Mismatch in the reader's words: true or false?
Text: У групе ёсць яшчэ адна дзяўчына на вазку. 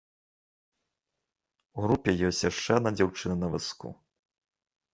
false